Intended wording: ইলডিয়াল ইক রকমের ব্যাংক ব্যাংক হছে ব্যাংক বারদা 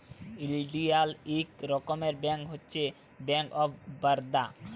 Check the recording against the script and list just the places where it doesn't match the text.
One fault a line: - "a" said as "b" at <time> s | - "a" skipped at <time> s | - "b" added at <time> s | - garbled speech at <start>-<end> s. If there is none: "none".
- "ব্যাংক" skipped at 2.4 s
- "অফ" added at 3.5 s